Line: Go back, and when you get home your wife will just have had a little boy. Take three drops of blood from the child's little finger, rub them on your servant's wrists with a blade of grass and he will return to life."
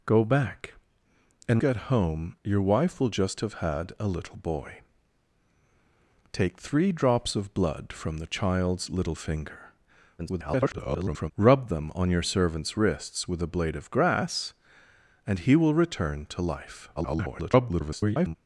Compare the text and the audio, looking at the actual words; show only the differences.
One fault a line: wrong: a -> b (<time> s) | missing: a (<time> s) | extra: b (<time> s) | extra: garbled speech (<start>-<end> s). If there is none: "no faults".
missing: when you (1.6 s)
extra: garbled speech (10.2-11.3 s)
extra: garbled speech (17.0-18.4 s)